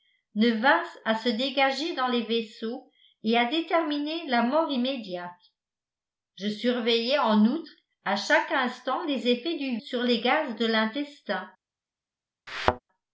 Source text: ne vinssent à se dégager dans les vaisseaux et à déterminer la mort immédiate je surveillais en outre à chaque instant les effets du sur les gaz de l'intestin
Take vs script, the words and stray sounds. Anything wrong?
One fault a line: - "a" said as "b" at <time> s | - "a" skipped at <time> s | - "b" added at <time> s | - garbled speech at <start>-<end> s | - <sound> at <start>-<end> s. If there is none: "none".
- thud at 12.5-12.8 s